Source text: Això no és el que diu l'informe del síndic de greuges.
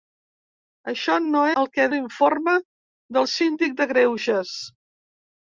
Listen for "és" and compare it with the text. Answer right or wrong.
wrong